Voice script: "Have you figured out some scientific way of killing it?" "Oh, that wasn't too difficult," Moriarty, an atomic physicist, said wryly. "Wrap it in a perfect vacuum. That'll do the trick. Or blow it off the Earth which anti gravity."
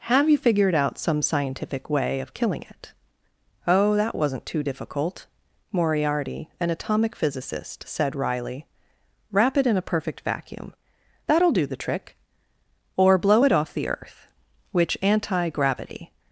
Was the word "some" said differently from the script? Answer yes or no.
no